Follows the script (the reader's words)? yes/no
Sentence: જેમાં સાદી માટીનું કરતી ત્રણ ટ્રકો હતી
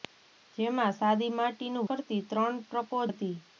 yes